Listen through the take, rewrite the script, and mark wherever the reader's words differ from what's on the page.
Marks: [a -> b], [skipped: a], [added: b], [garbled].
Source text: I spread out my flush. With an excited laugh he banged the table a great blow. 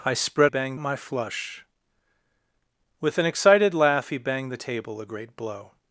I spread [out -> banged] my flush. With an excited laugh he banged the table a great blow.